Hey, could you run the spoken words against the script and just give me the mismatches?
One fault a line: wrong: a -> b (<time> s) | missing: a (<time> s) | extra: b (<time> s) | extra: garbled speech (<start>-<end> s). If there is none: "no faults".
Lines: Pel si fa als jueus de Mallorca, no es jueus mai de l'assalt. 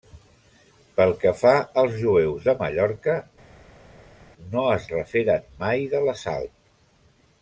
wrong: si -> que (1.2 s)
wrong: jueus -> referen (5.0 s)